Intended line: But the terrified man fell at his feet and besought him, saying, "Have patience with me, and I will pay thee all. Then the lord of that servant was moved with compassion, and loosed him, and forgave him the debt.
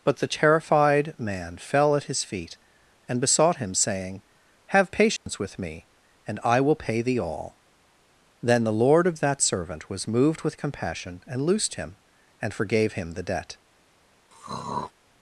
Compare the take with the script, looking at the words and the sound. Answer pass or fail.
fail